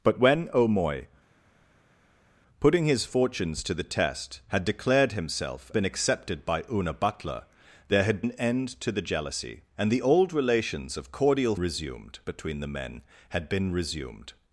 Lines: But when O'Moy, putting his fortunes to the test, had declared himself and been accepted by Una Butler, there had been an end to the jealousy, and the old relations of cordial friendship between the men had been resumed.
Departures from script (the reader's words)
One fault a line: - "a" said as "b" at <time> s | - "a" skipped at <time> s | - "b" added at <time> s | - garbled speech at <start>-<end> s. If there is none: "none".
- "and" skipped at 5.7 s
- "been" skipped at 8.2 s
- "friendship" said as "resumed" at 11.6 s